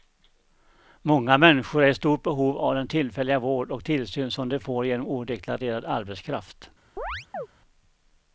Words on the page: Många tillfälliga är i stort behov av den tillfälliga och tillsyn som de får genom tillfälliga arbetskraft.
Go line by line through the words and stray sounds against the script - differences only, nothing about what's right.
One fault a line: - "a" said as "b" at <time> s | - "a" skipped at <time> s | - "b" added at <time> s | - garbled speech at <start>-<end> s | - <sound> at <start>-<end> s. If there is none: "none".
- "tillfälliga" said as "människor" at 1.4 s
- "vård" added at 3.4 s
- "tillfälliga" said as "odeklarerad" at 5.1 s
- chirp at 7.0-7.5 s